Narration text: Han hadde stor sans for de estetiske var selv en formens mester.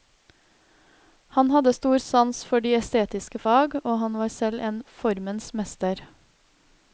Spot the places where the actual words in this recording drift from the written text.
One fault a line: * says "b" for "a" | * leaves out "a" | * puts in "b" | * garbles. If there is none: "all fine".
* puts in "fag og han"